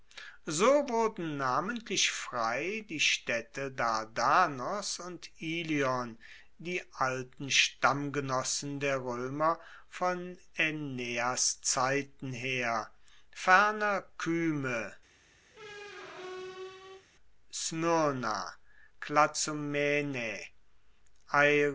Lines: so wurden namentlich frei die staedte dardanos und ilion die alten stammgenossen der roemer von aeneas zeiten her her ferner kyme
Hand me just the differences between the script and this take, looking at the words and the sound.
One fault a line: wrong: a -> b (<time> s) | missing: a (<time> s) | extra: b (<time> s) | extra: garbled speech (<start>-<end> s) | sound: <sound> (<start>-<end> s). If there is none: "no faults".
missing: her (12.9 s)
sound: squeak (15.5-17.1 s)